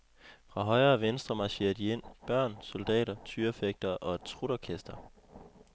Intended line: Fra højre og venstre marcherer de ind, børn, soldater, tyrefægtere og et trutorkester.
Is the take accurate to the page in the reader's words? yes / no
yes